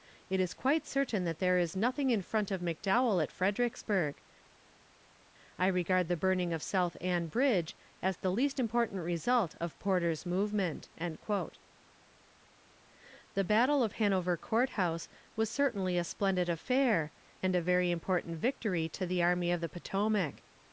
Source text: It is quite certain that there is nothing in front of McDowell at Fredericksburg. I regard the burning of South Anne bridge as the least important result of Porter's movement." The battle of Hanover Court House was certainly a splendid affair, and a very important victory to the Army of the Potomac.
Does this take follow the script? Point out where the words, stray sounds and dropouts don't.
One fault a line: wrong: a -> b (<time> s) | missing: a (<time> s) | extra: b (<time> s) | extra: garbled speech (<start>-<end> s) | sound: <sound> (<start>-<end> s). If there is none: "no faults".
no faults